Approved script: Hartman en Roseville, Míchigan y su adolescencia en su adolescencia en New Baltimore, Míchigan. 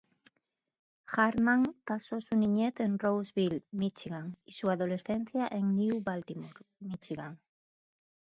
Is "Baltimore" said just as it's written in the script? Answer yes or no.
yes